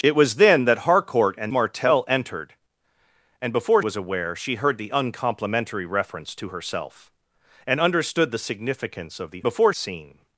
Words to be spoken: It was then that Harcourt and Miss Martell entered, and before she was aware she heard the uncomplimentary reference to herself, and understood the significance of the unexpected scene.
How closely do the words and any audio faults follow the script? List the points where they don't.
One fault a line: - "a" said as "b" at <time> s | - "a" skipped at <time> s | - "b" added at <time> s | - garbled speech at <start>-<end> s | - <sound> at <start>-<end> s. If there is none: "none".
- "Miss" skipped at 1.5 s
- "she" skipped at 3.8 s
- "unexpected" said as "before" at 9.4 s